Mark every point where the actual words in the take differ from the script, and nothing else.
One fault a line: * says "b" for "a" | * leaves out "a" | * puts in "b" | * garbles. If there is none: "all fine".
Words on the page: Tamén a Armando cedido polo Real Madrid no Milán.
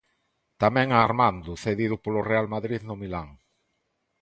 all fine